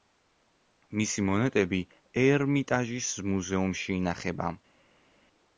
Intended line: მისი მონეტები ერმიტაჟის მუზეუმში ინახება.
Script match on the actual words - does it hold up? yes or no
yes